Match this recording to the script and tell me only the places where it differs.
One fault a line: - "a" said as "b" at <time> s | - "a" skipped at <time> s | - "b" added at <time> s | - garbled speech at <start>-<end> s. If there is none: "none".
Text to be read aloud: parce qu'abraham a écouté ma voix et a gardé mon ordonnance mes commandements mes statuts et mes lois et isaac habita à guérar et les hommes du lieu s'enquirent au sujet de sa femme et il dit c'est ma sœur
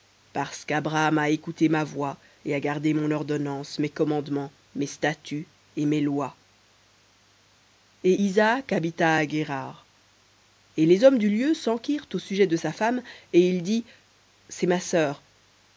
none